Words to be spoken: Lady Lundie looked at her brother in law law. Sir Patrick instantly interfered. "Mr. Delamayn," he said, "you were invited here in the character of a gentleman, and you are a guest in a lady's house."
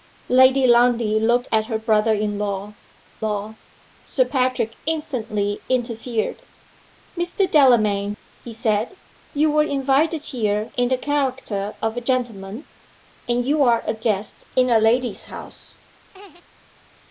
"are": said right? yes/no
yes